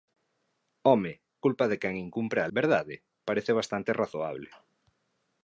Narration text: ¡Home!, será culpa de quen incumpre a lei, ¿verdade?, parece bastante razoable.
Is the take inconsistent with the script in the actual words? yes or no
yes